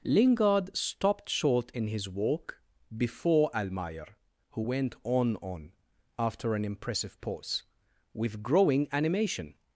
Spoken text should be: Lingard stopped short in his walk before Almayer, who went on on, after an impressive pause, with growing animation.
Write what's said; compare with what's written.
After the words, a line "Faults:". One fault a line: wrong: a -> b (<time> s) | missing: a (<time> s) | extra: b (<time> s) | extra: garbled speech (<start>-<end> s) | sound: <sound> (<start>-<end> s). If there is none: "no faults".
Lingard stopped short in his walk before Almayer, who went on on, after an impressive pause, with growing animation.
Faults:
no faults